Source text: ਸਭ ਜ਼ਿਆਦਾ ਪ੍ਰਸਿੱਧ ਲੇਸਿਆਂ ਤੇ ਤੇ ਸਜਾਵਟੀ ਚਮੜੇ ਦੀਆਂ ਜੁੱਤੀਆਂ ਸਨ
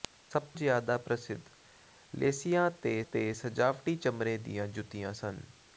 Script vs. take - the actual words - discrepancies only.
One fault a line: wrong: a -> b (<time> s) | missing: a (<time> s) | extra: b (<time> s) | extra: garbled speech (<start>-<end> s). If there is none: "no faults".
no faults